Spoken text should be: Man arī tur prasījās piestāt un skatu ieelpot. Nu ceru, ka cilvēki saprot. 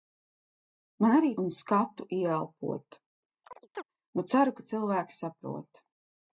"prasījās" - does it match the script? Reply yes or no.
no